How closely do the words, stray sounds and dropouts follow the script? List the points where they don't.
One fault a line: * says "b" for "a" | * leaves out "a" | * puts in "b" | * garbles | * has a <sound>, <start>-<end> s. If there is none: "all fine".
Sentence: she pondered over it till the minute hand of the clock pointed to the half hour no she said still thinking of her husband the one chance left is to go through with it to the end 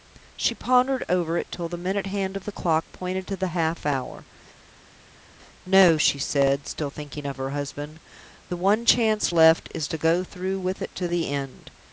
all fine